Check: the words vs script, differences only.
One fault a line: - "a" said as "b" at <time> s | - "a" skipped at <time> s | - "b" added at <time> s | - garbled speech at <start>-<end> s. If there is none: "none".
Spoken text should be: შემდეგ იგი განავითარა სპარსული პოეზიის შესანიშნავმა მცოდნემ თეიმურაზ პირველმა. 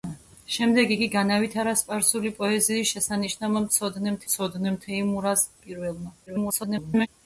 - "მცოდნემ" added at 4.3 s
- garbled speech at 6.3-7.1 s